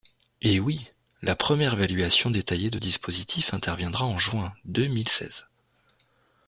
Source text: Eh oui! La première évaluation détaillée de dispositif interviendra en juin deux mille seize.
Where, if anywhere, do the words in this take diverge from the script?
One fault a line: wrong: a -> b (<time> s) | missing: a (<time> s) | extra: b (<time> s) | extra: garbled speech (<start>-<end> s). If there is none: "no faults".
no faults